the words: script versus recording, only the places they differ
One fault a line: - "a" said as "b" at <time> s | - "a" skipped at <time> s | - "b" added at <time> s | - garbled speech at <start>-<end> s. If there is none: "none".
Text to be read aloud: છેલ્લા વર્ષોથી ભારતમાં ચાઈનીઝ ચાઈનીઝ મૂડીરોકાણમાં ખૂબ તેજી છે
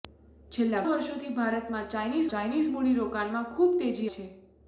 none